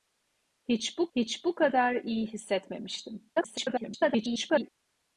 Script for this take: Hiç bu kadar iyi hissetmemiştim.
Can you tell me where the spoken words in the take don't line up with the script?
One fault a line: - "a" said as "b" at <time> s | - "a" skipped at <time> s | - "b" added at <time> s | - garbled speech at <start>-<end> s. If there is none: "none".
- "hiç bu" added at 1.2 s
- garbled speech at 3.3-4.7 s